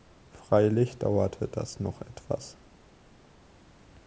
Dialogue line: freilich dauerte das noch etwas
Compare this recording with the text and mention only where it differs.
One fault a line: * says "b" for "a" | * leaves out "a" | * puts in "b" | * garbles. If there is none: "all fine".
all fine